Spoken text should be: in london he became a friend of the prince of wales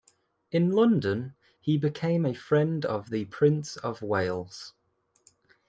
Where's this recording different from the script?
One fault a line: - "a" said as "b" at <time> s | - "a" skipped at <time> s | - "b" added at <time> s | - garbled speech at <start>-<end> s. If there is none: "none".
none